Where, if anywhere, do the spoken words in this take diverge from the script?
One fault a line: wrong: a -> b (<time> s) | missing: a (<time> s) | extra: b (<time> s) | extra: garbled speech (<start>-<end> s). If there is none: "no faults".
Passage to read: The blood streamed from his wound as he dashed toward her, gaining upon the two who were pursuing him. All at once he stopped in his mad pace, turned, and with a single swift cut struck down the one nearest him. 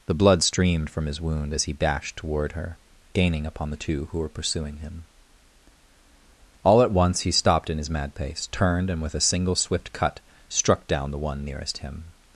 no faults